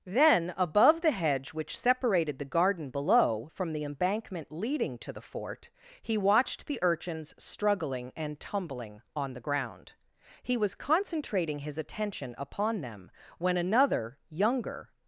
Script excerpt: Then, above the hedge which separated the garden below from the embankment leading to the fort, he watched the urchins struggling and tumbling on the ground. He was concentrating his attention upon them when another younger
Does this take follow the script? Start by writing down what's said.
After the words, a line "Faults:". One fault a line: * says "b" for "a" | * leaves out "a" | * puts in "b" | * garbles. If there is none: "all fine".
Then, above the hedge which separated the garden below from the embankment leading to the fort, he watched the urchins struggling and tumbling on the ground. He was concentrating his attention upon them when another younger
Faults:
all fine